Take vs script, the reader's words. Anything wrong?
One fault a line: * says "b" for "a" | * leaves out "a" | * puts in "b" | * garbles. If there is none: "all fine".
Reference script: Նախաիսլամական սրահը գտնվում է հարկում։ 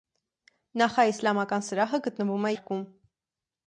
all fine